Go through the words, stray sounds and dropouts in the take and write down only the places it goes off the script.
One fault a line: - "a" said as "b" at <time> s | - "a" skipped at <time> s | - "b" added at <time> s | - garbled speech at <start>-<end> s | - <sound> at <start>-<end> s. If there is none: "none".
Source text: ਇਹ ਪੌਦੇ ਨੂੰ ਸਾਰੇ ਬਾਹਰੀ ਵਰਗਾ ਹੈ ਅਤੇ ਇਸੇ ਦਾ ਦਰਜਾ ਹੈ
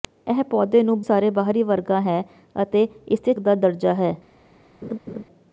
- laugh at 4.8-5.2 s